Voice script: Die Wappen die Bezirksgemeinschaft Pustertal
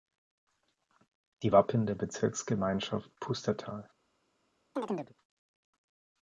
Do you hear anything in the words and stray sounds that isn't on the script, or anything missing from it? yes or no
yes